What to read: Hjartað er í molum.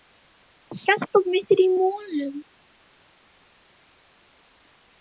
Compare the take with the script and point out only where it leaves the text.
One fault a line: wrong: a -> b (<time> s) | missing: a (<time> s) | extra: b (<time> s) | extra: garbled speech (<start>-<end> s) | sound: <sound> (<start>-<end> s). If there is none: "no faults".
extra: mitt (1.4 s)